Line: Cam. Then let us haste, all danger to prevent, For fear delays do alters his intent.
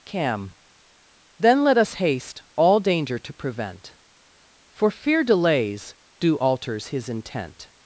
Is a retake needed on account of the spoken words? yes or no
no